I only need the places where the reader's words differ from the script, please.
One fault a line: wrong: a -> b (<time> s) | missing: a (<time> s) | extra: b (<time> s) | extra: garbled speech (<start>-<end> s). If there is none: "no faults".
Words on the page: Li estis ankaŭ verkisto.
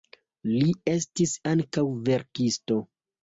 no faults